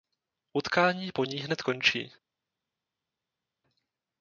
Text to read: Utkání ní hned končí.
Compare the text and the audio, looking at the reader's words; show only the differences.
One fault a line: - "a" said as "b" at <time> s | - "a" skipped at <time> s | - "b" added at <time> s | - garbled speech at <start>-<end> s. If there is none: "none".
- "po" added at 1.1 s